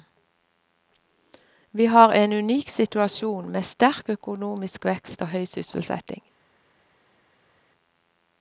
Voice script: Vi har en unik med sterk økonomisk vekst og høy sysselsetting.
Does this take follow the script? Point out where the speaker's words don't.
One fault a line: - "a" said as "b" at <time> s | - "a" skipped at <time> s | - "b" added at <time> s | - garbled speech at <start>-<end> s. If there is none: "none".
- "situasjon" added at 2.7 s